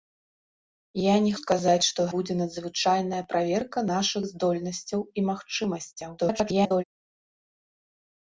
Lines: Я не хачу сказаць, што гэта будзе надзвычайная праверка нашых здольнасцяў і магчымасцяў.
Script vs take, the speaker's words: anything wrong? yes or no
yes